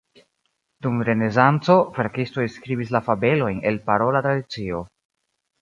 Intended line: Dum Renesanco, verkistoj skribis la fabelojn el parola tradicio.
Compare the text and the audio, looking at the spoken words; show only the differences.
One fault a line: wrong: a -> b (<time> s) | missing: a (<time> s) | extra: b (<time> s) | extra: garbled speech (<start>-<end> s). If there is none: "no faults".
no faults